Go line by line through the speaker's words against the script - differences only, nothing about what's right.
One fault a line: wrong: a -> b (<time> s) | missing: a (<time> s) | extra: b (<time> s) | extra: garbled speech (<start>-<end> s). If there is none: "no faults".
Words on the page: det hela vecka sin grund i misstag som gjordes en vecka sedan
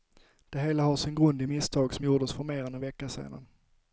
wrong: vecka -> har (0.8 s)
extra: för mer än (2.3 s)